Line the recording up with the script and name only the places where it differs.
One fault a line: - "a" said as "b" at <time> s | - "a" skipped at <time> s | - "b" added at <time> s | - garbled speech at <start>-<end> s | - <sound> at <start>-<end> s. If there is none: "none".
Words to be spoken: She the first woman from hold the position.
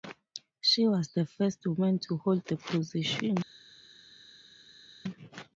- "was" added at 0.9 s
- "from" said as "to" at 2.1 s